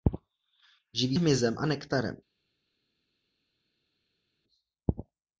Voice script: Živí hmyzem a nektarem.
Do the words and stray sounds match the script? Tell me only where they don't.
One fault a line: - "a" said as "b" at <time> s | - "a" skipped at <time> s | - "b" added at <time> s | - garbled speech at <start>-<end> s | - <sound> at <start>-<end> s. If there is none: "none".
none